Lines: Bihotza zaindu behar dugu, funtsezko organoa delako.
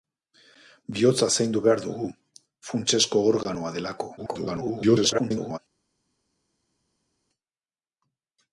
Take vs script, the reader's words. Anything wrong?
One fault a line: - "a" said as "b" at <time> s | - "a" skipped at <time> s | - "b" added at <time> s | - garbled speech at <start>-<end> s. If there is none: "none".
- garbled speech at 4.2-5.6 s